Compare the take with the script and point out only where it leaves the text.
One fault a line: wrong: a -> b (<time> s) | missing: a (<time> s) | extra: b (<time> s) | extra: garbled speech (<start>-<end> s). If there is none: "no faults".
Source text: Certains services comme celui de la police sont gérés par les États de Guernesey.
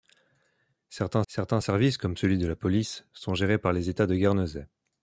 extra: certains (1.3 s)